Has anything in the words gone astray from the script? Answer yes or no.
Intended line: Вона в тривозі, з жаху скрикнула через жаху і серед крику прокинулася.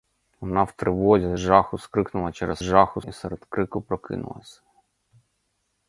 no